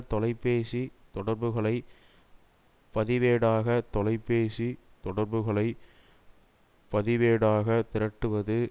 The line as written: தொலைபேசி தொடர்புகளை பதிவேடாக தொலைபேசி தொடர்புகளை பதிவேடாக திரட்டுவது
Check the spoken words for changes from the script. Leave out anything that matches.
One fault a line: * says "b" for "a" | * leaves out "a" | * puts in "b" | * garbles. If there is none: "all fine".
all fine